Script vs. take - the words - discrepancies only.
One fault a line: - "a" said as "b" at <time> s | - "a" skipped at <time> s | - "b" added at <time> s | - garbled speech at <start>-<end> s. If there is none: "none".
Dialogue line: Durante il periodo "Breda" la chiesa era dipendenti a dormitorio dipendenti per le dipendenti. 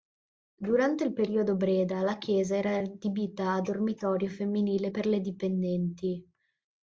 - "dipendenti" said as "adibita" at 2.8 s
- "dipendenti" said as "femminile" at 4.3 s